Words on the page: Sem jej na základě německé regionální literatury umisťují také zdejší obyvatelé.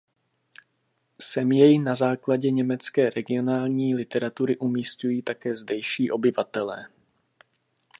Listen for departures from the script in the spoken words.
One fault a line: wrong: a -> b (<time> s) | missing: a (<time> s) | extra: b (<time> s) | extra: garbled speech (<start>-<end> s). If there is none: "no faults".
no faults